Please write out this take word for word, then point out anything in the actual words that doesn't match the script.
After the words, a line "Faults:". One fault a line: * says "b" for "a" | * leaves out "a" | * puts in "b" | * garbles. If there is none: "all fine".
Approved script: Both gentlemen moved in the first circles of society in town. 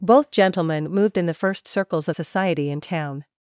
Both gentlemen moved in the first circles of society in town.
Faults:
all fine